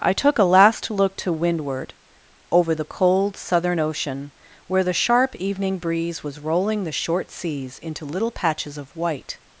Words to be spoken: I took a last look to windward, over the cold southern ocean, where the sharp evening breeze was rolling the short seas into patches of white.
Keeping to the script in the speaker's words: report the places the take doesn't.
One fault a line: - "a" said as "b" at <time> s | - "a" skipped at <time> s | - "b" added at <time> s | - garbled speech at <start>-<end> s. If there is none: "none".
- "little" added at 8.1 s